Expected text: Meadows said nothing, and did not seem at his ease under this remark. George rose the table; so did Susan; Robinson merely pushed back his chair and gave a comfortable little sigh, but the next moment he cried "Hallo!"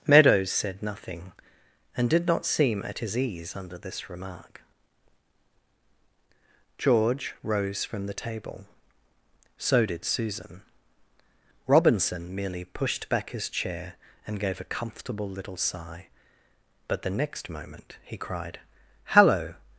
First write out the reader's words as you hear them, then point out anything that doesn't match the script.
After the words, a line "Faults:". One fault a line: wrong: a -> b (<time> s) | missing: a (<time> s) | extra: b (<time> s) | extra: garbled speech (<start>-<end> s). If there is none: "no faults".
Meadows said nothing, and did not seem at his ease under this remark. George rose from the table; so did Susan; Robinson merely pushed back his chair and gave a comfortable little sigh, but the next moment he cried "Hallo!"
Faults:
extra: from (7.8 s)